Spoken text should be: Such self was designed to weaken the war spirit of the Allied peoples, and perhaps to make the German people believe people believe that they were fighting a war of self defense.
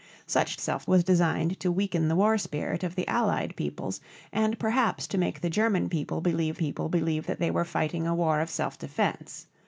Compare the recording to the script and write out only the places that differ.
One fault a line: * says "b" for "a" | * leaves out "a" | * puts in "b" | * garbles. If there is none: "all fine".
all fine